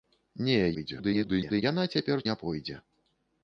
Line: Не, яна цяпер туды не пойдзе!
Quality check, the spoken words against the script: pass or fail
fail